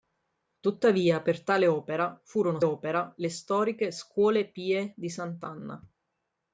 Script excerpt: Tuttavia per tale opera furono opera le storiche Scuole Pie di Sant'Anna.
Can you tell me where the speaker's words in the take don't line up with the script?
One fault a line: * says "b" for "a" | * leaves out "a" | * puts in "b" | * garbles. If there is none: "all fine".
all fine